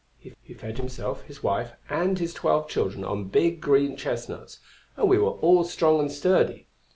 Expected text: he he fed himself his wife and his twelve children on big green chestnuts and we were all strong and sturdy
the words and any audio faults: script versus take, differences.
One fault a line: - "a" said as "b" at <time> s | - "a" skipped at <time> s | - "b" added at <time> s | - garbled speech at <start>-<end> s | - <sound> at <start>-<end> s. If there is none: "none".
none